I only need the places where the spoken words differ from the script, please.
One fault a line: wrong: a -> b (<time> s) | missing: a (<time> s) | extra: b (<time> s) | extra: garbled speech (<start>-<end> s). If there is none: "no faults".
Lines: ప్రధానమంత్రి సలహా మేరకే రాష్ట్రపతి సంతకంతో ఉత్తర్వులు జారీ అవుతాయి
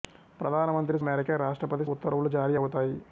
missing: సలహా (1.0 s)
missing: సంతకంతో (1.9 s)